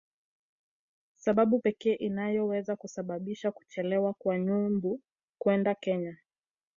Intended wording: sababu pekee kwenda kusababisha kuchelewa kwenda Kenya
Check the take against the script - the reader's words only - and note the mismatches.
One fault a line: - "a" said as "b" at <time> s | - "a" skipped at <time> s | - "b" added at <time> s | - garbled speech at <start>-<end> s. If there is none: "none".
- "kwenda" said as "inayoweza" at 1.9 s
- "kwa Nyumbu" added at 4.1 s